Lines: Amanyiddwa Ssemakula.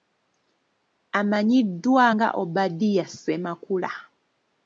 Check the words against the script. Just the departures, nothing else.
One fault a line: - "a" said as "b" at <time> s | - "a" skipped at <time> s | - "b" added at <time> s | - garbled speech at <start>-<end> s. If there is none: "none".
- "nga Obadia" added at 2.1 s